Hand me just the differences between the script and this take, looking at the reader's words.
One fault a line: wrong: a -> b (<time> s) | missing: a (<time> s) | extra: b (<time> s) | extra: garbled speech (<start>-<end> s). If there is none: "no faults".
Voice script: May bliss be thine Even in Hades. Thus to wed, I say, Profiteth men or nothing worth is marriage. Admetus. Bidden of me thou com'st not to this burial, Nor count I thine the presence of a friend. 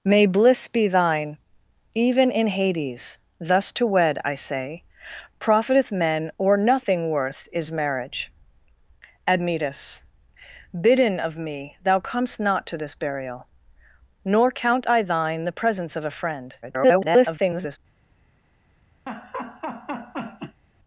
extra: garbled speech (16.6-17.8 s)